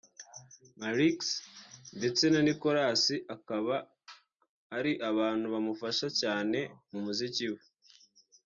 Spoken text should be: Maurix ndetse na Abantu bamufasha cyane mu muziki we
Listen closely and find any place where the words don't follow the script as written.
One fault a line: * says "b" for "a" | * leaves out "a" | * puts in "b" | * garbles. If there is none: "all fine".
* puts in "Nicolas akaba ari"